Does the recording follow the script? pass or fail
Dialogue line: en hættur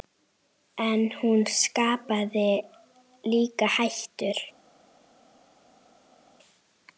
fail